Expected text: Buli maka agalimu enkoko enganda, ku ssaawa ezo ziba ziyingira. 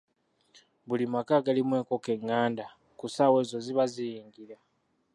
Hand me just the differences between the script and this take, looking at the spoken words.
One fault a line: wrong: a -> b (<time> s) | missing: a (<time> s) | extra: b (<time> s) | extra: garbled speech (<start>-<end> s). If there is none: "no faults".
no faults